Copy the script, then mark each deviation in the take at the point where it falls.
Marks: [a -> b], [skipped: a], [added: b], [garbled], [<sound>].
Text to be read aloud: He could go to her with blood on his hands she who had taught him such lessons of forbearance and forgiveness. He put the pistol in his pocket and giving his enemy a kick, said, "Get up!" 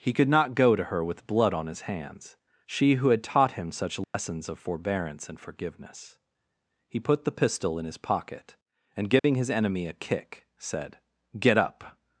He could [added: not] go to her with blood on his hands she who had taught him such lessons [dropout] of forbearance and forgiveness. He put the pistol in his pocket and giving [dropout] his enemy a kick, said, "Get up!"